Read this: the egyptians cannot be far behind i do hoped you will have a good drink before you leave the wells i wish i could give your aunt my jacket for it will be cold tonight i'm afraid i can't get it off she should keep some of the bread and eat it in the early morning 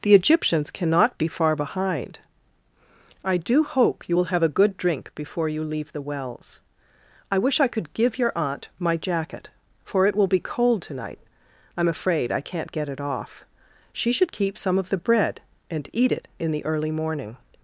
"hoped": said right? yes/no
no